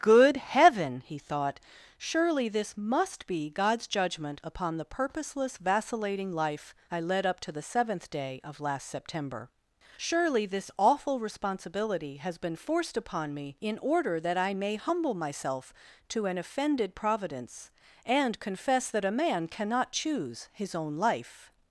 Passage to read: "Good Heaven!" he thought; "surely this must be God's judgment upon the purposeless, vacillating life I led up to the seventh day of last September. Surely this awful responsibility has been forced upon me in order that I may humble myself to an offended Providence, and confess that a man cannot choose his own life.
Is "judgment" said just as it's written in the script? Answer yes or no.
yes